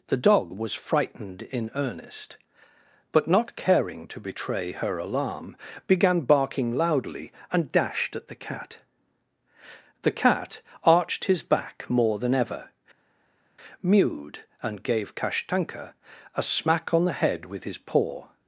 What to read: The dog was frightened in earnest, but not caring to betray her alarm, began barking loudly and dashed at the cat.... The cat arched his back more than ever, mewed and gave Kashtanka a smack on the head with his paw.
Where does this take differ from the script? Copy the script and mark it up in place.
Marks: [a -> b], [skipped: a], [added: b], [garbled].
The dog was frightened in earnest, but not caring to betray her alarm, began barking loudly and dashed at the cat.... The cat arched his back more than ever, mewed and gave Kashtanka a smack on the head with his paw.